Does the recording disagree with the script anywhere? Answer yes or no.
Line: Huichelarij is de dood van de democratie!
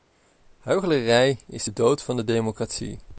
no